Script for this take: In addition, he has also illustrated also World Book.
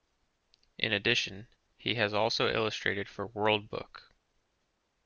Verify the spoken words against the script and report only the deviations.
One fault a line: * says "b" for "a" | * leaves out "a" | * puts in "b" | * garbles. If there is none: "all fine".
* says "for" for "also"